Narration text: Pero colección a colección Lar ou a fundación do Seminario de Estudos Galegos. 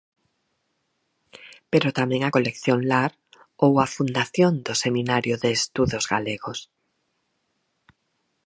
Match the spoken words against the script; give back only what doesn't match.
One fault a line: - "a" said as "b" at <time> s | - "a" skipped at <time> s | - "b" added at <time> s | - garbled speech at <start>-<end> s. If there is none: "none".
- "colección" said as "tamén" at 2.0 s